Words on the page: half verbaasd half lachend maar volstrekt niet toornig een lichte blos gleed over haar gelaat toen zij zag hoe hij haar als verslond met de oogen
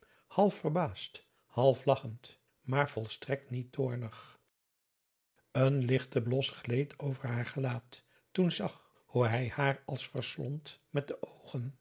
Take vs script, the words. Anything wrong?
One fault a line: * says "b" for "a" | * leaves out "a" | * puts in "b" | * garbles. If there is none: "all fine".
* leaves out "zij"